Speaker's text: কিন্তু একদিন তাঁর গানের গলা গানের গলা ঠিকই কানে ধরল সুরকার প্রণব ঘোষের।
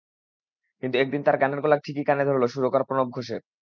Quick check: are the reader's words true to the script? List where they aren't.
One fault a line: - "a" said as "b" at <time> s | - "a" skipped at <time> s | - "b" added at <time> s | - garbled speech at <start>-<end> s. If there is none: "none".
- "গানের গলা" skipped at 1.8 s